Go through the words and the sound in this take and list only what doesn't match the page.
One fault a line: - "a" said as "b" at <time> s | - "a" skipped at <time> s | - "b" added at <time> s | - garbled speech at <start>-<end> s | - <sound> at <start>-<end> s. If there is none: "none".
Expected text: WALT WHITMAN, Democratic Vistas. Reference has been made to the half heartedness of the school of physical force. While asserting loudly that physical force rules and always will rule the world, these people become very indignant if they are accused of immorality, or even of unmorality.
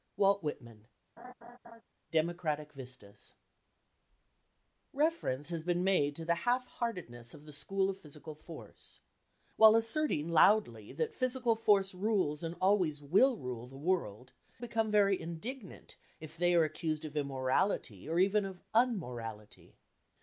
- laugh at 1.2-1.8 s
- "these people" skipped at 14.3 s